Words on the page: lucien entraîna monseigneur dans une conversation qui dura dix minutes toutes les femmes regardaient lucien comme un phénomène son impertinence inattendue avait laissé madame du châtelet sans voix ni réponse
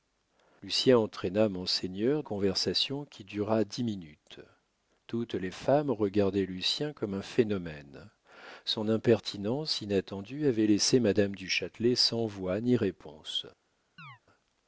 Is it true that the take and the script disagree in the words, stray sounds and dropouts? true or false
true